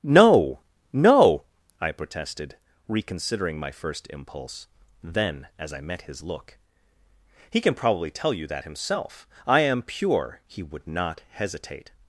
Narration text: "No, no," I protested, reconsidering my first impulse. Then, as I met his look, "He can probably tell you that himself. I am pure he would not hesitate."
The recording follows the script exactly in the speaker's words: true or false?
true